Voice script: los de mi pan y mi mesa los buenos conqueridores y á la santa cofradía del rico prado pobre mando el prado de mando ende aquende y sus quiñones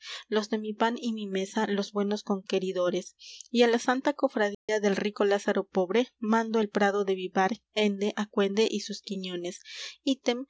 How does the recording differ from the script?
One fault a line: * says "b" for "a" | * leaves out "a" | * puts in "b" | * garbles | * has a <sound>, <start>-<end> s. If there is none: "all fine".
* has a dropout, 4.5-4.7 s
* says "lázaro" for "prado"
* says "vivar" for "mando"